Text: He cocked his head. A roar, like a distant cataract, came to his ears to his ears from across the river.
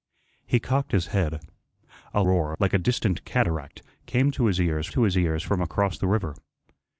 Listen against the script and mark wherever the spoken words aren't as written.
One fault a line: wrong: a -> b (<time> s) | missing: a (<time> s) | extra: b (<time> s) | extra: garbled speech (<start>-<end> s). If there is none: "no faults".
no faults